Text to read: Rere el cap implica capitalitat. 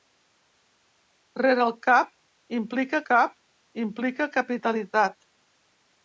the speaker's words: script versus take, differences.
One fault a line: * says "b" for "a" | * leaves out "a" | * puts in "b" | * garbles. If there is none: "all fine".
* puts in "cap implica"